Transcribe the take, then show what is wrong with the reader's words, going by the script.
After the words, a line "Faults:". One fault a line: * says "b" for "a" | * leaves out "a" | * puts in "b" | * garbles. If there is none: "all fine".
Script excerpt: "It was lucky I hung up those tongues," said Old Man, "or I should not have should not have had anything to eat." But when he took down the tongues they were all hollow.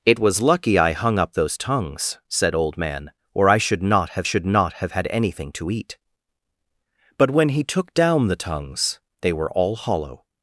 "It was lucky I hung up those tongues," said Old Man, "or I should not have should not have had anything to eat." But when he took down the tongues they were all hollow.
Faults:
all fine